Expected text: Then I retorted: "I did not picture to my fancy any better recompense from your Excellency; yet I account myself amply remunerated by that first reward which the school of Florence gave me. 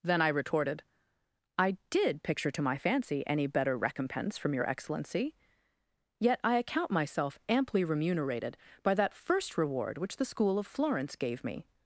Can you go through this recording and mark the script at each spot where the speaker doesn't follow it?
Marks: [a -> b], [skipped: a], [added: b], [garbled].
Then I retorted: "I did [skipped: not] picture to my fancy any better recompense from your Excellency; yet I account myself amply remunerated by that first reward which the school of Florence gave me.